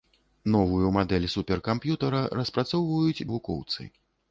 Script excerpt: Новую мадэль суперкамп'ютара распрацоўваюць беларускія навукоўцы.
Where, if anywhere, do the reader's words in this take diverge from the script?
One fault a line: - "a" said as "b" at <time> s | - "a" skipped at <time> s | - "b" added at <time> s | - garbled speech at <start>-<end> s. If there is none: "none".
- "беларускія" skipped at 3.2 s